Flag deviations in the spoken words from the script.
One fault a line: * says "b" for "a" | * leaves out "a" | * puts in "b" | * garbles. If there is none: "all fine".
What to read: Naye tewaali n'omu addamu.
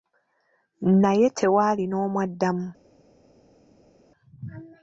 all fine